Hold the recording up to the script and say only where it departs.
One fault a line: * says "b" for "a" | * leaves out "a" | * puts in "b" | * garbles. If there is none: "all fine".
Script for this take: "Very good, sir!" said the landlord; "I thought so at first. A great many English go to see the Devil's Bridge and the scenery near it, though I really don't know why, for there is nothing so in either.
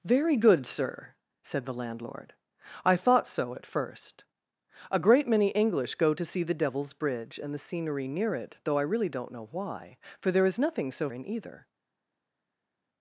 all fine